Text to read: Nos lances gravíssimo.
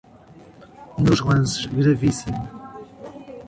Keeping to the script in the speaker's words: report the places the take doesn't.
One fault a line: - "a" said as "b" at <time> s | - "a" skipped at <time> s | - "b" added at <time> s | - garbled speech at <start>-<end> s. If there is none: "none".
none